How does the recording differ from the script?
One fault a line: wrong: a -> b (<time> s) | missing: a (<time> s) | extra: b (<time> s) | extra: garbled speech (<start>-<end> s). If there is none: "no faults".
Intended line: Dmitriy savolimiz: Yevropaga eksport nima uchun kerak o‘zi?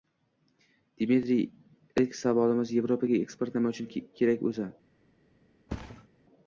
extra: ilk (2.0 s)